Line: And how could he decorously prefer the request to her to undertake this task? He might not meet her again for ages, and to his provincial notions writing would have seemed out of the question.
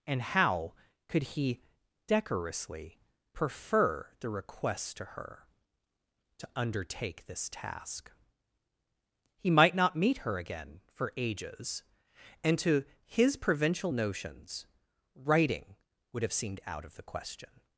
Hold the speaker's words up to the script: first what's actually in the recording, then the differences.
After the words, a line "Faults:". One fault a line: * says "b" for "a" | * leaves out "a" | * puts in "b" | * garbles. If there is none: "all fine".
And how could he decorously prefer the request to her to undertake this task? He might not meet her again for ages, and to his provincial notions writing would have seemed out of the question.
Faults:
all fine